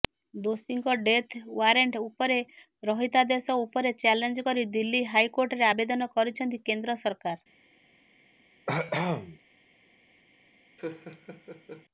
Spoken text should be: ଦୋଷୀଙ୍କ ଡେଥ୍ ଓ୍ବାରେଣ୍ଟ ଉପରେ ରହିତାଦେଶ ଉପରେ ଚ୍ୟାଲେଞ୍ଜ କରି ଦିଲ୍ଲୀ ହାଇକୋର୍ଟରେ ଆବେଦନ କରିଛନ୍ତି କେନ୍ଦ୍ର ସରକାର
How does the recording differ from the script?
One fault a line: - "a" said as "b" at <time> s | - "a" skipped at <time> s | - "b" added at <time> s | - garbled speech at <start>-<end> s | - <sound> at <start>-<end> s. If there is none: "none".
- cough at 8.7-9.4 s
- laugh at 10.8-11.9 s